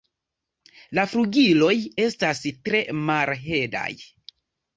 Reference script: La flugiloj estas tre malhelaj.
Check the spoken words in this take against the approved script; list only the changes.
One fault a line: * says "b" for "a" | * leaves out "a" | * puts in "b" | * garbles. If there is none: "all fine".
all fine